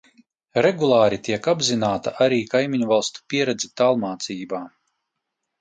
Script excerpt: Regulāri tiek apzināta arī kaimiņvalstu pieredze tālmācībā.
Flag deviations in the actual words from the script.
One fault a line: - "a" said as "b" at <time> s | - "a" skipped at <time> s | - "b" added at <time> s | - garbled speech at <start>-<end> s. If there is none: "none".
none